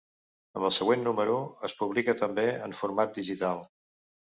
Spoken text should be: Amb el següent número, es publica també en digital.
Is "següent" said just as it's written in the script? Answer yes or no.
yes